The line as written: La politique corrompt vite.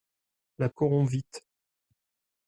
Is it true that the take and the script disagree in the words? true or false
true